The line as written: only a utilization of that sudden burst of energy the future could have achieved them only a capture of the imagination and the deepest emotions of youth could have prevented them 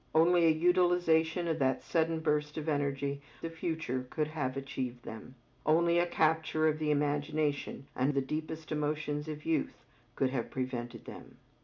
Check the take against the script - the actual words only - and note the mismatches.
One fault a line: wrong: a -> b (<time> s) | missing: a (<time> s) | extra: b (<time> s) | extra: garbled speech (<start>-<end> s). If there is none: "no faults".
no faults